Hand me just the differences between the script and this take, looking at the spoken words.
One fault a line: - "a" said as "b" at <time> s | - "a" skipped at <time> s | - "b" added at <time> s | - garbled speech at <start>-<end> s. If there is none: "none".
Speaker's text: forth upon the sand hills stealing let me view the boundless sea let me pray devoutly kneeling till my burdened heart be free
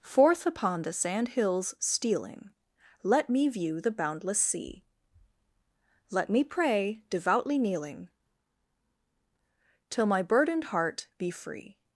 none